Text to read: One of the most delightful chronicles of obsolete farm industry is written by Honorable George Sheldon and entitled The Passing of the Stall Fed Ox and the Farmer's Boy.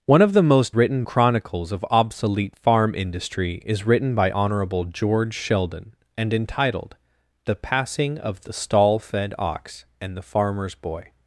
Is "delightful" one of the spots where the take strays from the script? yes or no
yes